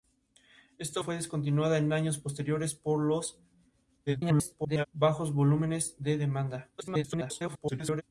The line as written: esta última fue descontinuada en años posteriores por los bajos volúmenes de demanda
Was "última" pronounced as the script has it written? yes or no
no